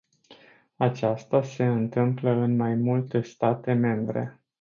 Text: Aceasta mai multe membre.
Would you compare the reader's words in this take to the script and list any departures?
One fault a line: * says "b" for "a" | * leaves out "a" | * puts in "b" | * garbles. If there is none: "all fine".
* puts in "se întâmplă în"
* puts in "state"